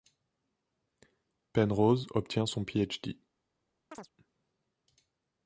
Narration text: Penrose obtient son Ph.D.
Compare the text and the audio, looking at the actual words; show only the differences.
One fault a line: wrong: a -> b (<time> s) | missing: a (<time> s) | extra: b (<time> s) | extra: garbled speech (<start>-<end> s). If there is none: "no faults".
no faults